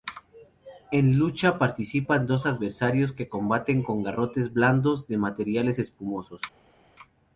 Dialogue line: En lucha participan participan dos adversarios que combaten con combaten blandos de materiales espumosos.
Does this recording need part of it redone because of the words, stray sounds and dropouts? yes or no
yes